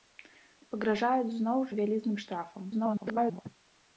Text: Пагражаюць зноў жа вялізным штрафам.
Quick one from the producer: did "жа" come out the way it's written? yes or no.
no